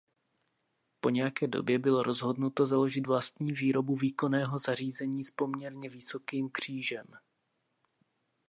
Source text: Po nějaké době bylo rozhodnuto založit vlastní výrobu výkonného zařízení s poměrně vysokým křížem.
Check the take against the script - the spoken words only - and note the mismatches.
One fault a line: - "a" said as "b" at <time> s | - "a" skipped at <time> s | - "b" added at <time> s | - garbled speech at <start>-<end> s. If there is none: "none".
none